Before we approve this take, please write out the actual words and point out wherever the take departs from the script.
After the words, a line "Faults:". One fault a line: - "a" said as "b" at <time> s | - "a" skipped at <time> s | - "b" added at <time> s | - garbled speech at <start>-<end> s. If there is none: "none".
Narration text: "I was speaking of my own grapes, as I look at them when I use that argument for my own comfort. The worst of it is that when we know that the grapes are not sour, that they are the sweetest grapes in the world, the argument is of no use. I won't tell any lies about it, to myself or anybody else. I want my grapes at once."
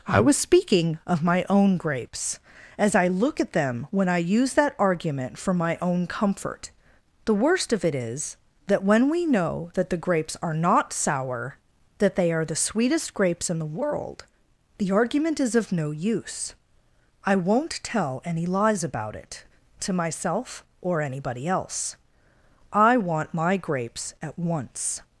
"I was speaking of my own grapes, as I look at them when I use that argument for my own comfort. The worst of it is that when we know that the grapes are not sour, that they are the sweetest grapes in the world, the argument is of no use. I won't tell any lies about it, to myself or anybody else. I want my grapes at once."
Faults:
none